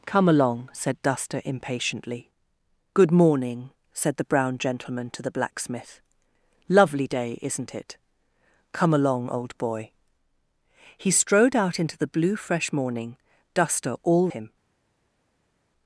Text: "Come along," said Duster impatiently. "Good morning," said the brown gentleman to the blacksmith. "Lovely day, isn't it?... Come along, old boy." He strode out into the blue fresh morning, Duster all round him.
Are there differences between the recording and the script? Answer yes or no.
yes